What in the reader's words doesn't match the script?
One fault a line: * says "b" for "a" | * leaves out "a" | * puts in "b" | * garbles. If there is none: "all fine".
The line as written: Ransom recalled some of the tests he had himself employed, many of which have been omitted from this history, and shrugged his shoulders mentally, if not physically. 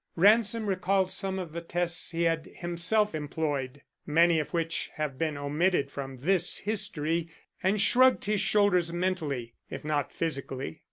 all fine